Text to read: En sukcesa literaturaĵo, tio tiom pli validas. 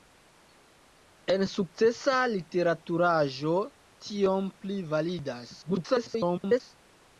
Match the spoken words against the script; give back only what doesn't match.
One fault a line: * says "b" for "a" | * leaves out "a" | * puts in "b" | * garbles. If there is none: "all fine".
* leaves out "tio"
* garbles